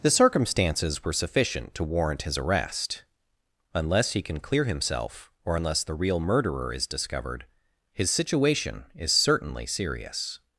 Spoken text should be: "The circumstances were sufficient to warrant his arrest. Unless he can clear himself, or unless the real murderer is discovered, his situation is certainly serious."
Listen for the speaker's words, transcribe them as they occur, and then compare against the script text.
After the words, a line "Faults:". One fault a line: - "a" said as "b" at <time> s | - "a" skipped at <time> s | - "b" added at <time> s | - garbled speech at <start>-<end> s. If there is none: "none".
"The circumstances were sufficient to warrant his arrest. Unless he can clear himself, or unless the real murderer is discovered, his situation is certainly serious."
Faults:
none